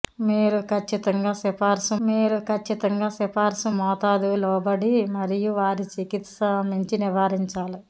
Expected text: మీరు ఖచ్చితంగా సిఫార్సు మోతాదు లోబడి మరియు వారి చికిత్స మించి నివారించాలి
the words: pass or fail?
fail